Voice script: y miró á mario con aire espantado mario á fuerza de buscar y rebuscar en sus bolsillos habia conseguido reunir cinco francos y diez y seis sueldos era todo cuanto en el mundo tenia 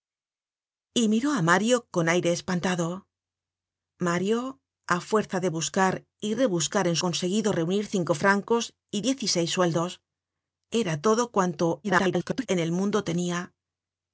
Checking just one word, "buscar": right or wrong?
right